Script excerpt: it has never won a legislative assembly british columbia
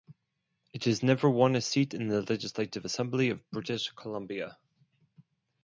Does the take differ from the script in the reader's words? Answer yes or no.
yes